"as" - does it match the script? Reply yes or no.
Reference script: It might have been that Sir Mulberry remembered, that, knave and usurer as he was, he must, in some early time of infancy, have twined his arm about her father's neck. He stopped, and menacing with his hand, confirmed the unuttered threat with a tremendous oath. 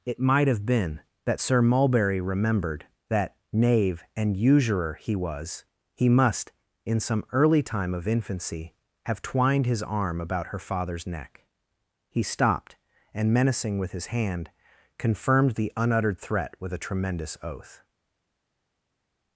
no